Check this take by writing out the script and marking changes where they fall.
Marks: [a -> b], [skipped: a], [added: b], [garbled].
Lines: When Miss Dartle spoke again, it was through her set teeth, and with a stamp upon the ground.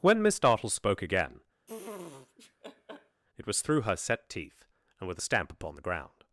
When Miss Dartle spoke again, it was through her set teeth, and with a stamp upon the ground.